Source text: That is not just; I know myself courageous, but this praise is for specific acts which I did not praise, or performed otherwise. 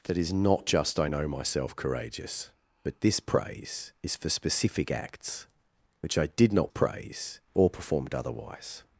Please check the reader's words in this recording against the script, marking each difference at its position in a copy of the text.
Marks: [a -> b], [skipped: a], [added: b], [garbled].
That is not just; I know myself courageous, but this praise is for specific acts which I did not praise, or performed otherwise.